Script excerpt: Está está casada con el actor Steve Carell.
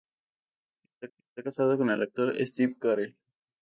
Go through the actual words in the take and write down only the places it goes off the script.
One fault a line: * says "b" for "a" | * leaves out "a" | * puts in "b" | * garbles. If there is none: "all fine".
all fine